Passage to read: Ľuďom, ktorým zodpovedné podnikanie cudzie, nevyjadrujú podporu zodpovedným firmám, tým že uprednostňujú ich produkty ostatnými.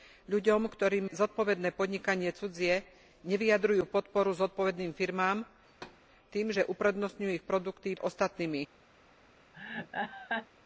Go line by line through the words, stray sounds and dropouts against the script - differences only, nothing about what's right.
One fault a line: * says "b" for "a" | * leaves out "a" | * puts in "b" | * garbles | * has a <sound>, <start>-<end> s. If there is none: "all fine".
* has a thud, 5.7-6.0 s
* has a laugh, 9.5-10.5 s